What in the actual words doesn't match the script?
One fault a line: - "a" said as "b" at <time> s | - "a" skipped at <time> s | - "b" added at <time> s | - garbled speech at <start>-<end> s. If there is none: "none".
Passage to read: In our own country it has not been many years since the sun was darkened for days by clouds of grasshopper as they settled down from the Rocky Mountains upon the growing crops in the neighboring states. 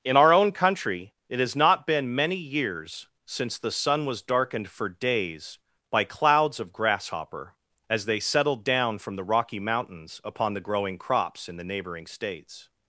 none